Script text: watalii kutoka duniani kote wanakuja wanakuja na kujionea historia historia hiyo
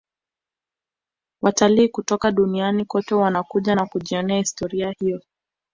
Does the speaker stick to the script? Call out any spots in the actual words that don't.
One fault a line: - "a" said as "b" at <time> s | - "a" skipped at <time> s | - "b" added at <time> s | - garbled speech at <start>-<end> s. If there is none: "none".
- "wanakuja" skipped at 3.7 s
- "historia" skipped at 4.9 s